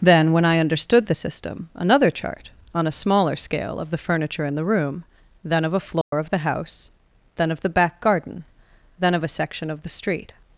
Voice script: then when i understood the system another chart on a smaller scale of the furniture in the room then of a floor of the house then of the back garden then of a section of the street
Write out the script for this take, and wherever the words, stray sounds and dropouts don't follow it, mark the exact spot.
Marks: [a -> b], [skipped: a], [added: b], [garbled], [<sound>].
then when i understood the system another chart on a smaller scale of the furniture in the room then of a floor [dropout] of the house then of the back garden then of a section of the street